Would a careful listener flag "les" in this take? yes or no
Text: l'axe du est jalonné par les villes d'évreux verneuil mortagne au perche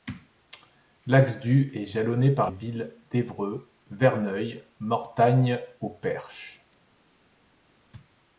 yes